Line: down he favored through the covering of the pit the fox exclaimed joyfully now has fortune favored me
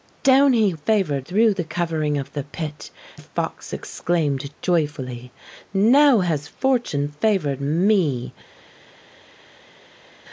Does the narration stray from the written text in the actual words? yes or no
no